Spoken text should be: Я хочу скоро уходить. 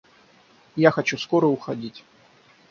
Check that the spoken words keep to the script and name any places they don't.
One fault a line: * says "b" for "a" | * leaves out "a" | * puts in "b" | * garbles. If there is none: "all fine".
all fine